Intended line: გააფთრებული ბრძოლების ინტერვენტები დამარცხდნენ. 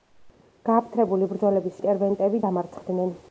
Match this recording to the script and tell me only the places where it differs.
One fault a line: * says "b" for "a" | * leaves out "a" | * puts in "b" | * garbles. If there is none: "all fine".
all fine